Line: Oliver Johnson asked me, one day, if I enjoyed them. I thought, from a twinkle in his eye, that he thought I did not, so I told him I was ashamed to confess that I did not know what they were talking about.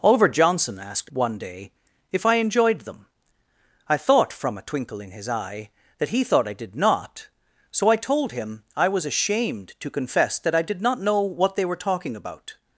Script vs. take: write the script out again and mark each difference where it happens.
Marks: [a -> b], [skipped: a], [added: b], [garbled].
Oliver Johnson asked [skipped: me,] one day, if I enjoyed them. I thought, from a twinkle in his eye, that he thought I did not, so I told him I was ashamed to confess that I did not know what they were talking about.